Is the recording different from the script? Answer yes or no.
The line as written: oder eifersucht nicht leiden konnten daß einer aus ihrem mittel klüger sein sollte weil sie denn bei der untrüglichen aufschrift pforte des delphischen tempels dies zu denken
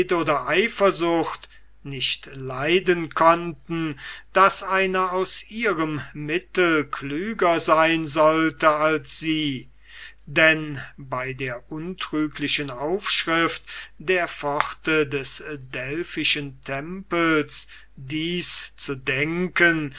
yes